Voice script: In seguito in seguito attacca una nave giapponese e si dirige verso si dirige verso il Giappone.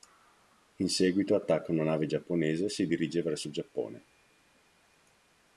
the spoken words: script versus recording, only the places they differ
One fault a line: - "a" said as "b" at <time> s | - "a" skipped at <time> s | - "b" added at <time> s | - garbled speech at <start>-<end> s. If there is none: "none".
- "in seguito" skipped at 1.4 s
- "si dirige verso" skipped at 3.5 s